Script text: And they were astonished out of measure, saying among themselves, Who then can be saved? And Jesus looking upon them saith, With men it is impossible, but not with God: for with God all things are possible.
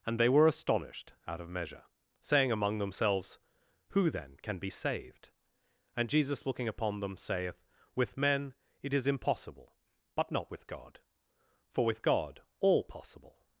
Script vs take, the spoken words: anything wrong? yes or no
yes